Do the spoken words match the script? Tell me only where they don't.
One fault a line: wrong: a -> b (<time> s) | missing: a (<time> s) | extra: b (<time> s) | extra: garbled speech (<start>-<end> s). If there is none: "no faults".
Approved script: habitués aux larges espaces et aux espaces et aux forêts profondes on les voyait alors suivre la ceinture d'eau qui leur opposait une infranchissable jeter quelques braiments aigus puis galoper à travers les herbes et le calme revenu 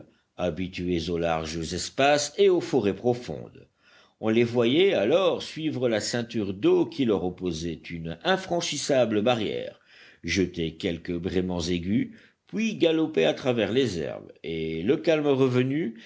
missing: espaces et aux (2.6 s)
extra: barrière (9.2 s)